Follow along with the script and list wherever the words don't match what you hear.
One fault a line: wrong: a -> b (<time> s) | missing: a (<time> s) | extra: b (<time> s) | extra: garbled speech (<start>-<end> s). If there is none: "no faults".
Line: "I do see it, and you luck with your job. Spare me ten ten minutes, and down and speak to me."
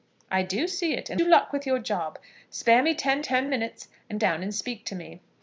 no faults